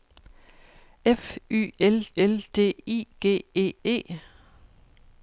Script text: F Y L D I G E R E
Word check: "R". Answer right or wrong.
wrong